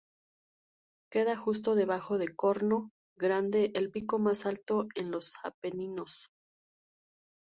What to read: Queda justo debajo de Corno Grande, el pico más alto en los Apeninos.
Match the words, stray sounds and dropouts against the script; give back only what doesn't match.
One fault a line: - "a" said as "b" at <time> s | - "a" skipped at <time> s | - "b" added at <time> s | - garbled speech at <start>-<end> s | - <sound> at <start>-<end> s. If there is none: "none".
none